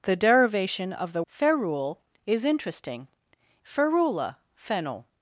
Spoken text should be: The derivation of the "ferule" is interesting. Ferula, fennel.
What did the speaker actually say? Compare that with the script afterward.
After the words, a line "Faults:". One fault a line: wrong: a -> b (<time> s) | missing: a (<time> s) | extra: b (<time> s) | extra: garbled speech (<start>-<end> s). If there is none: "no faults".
The derivation of the "ferule" is interesting. Ferula, fennel.
Faults:
no faults